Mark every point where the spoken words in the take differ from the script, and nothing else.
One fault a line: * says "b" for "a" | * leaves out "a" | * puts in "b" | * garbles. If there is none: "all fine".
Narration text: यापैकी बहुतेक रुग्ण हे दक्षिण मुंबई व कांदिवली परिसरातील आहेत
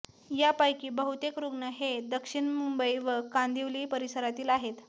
all fine